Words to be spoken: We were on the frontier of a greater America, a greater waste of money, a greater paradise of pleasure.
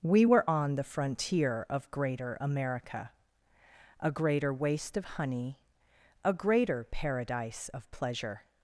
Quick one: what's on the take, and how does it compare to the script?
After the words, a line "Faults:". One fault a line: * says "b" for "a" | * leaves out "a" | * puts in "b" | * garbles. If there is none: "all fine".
We were on the frontier of greater America, a greater waste of honey, a greater paradise of pleasure.
Faults:
* leaves out "a"
* says "honey" for "money"